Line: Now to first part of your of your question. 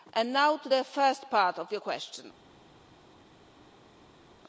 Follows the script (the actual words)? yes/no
no